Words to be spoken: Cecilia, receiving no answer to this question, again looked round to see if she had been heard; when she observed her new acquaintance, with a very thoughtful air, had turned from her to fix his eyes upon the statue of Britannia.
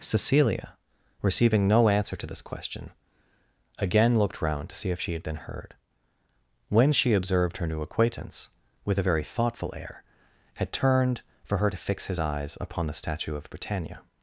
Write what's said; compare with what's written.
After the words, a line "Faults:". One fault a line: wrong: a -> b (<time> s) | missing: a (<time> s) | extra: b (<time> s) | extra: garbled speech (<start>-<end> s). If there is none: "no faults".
Cecilia, receiving no answer to this question, again looked round to see if she had been heard; when she observed her new acquaintance, with a very thoughtful air, had turned for her to fix his eyes upon the statue of Britannia.
Faults:
wrong: from -> for (11.4 s)